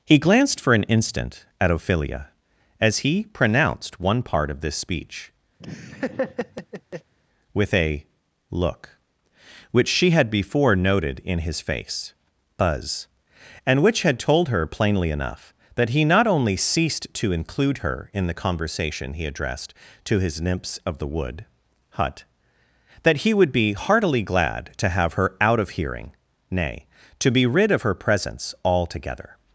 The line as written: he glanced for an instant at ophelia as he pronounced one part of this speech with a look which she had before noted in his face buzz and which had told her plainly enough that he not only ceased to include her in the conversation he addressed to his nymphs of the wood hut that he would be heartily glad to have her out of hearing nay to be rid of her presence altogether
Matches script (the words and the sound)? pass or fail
fail